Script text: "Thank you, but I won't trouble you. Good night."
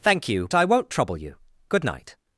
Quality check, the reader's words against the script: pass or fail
fail